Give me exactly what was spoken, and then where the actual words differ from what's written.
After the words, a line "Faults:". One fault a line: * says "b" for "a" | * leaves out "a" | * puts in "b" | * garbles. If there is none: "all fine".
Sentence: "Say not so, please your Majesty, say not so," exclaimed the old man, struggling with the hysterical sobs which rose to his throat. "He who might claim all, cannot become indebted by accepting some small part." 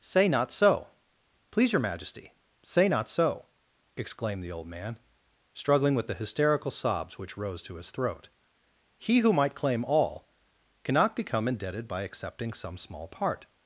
"Say not so, please your Majesty, say not so," exclaimed the old man, struggling with the hysterical sobs which rose to his throat. "He who might claim all, cannot become indebted by accepting some small part."
Faults:
all fine